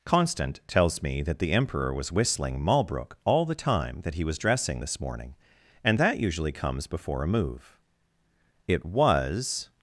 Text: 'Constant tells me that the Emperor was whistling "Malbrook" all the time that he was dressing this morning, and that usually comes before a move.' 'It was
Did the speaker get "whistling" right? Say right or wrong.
right